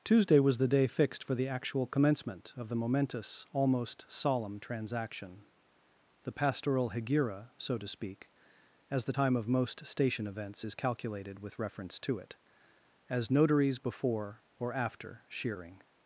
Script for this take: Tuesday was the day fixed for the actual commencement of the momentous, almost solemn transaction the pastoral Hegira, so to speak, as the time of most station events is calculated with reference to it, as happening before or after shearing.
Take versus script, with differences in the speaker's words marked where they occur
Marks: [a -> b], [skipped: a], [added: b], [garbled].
Tuesday was the day fixed for the actual commencement of the momentous, almost solemn transaction the pastoral Hegira, so to speak, as the time of most station events is calculated with reference to it, as [happening -> notaries] before or after shearing.